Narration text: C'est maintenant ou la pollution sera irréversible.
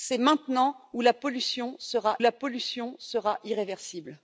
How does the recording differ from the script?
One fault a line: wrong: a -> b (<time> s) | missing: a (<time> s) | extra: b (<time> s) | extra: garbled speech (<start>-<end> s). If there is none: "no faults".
extra: la pollution sera (2.2 s)